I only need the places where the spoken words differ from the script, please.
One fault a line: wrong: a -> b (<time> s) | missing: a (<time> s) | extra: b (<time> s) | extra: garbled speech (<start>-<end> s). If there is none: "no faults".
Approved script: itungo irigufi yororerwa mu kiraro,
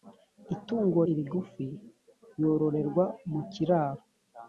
no faults